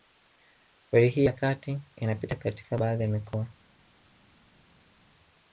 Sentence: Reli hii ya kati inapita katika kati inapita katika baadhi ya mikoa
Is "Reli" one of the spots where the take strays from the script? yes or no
no